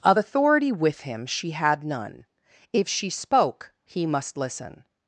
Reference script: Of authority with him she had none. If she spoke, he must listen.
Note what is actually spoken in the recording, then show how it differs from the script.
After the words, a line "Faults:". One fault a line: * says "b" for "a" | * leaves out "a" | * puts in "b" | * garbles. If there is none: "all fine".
Of authority with him she had none. If she spoke, he must listen.
Faults:
all fine